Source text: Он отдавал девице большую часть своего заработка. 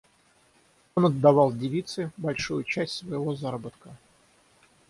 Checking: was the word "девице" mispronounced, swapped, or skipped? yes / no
no